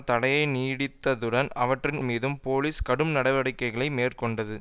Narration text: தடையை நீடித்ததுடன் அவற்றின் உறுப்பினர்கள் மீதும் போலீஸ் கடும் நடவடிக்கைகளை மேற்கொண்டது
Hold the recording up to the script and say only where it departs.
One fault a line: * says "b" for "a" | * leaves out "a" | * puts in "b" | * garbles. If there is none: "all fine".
* leaves out "உறுப்பினர்கள்"